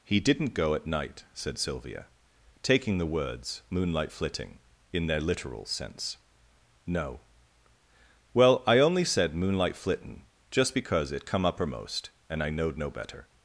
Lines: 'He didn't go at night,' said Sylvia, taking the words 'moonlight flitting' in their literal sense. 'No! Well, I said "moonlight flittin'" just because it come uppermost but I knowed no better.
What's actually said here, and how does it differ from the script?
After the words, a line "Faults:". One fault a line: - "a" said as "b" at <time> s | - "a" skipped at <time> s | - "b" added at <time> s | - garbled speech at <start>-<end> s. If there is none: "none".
'He didn't go at night,' said Sylvia, taking the words 'moonlight flitting' in their literal sense. 'No! Well, I only said "moonlight flittin'" just because it come uppermost and I knowed no better.
Faults:
- "only" added at 8.8 s
- "but" said as "and" at 12.3 s